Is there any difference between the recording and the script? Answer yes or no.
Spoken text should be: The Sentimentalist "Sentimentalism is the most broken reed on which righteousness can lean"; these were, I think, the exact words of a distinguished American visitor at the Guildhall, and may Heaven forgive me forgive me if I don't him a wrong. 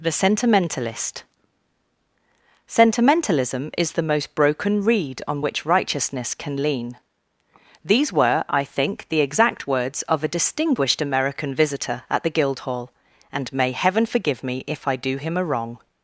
yes